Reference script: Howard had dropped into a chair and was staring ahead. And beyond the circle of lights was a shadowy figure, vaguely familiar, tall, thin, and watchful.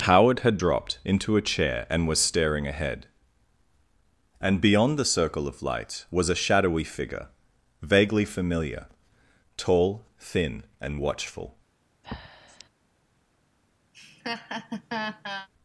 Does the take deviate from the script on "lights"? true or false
true